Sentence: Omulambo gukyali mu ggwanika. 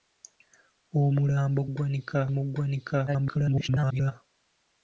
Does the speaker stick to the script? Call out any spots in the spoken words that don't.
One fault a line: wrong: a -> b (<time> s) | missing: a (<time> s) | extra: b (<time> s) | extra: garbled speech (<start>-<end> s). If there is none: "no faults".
wrong: gukyali -> ggwanika (1.7 s)
extra: garbled speech (3.1-4.1 s)